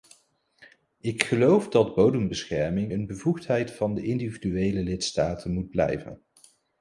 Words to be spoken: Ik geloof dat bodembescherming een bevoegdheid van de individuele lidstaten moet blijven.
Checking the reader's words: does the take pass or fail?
pass